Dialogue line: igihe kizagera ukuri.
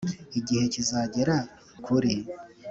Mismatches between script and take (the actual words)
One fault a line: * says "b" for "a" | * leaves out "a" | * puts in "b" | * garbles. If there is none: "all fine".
all fine